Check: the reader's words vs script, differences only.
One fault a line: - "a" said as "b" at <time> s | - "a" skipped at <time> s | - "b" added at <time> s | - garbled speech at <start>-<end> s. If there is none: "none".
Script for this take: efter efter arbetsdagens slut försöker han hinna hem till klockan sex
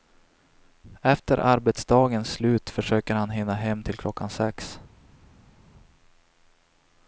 - "efter" skipped at 1.4 s